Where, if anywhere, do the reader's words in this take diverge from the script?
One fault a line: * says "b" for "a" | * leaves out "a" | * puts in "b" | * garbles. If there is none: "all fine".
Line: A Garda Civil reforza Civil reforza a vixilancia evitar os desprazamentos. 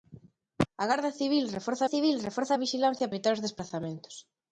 all fine